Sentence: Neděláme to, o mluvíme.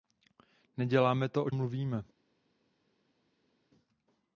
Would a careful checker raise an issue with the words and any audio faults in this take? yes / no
no